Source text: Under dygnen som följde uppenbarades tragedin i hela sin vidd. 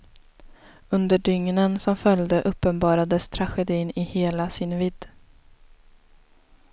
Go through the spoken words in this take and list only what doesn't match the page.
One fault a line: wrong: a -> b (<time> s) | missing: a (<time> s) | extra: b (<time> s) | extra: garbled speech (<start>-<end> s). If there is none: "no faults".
no faults